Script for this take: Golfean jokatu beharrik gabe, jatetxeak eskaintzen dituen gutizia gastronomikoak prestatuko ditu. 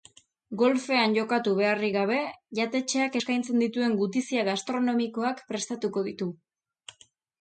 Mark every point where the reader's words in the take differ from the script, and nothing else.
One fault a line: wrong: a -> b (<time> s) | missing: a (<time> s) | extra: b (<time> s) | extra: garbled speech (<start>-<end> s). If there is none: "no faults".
no faults